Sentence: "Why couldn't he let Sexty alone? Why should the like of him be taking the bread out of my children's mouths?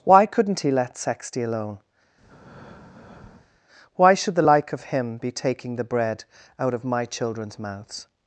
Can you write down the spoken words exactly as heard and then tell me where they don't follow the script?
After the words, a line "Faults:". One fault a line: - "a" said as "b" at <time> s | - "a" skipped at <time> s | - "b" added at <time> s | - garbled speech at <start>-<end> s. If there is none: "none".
"Why couldn't he let Sexty alone? Why should the like of him be taking the bread out of my children's mouths?
Faults:
none